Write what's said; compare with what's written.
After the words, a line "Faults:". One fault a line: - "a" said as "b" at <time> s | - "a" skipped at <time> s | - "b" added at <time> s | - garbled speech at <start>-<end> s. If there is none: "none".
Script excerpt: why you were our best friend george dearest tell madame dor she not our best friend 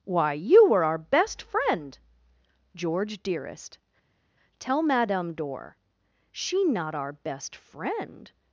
why you were our best friend george dearest tell madame dor she not our best friend
Faults:
none